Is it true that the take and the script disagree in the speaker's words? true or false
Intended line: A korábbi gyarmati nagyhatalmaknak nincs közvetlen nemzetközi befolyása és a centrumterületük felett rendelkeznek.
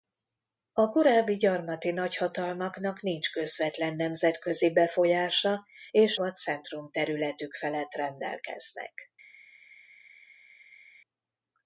false